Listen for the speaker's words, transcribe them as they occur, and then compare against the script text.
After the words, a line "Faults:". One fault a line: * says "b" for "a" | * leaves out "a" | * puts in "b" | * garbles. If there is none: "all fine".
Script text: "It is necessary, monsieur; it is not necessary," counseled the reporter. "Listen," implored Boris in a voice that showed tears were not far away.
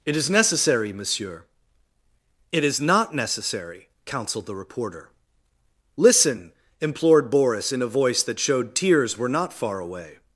"It is necessary, monsieur; it is not necessary," counseled the reporter. "Listen," implored Boris in a voice that showed tears were not far away.
Faults:
all fine